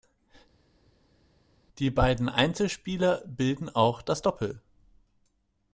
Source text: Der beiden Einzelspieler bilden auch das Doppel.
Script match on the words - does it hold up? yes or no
no